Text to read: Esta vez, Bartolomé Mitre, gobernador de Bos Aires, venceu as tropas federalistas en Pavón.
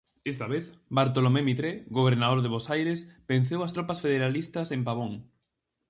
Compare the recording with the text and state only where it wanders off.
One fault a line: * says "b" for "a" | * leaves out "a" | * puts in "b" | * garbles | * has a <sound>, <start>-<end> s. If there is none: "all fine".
all fine